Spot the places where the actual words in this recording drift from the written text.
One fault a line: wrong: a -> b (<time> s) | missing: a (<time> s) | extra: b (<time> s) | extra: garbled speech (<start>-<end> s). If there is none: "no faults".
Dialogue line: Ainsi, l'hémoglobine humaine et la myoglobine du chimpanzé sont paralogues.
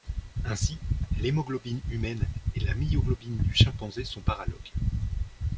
no faults